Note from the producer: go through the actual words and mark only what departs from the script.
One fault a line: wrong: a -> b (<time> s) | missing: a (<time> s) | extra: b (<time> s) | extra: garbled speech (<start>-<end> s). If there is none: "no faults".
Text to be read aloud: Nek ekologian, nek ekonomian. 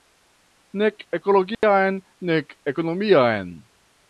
no faults